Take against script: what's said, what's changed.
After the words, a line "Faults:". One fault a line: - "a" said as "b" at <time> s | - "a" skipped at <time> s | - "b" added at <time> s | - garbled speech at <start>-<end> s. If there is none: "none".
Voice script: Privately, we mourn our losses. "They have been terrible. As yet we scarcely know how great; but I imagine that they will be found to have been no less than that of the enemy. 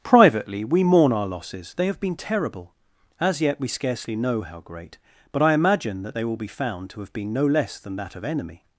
Privately, we mourn our losses. "They have been terrible. As yet we scarcely know how great; but I imagine that they will be found to have been no less than that of enemy.
Faults:
- "the" skipped at 8.2 s